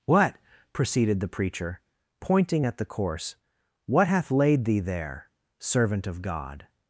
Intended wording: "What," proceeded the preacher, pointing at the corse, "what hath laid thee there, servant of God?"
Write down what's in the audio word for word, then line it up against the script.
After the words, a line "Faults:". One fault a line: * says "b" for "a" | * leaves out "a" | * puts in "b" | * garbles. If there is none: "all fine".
"What," proceeded the preacher, pointing at the corse, "what hath laid thee there, servant of God?"
Faults:
all fine